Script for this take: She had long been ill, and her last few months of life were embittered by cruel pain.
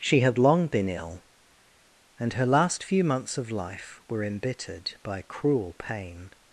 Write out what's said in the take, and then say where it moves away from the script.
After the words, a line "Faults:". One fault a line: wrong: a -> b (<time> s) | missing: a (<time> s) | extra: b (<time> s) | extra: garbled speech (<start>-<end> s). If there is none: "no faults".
She had long been ill, and her last few months of life were embittered by cruel pain.
Faults:
no faults